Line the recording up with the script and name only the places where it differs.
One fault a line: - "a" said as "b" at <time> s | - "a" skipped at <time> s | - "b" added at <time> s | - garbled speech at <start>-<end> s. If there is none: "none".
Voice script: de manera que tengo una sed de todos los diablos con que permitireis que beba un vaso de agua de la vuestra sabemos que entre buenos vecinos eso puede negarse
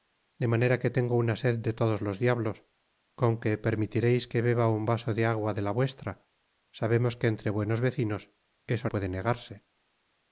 none